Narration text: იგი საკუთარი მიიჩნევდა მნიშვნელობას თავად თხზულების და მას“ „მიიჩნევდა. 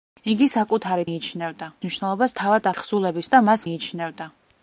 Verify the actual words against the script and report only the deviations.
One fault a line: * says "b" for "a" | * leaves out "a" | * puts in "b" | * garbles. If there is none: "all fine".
all fine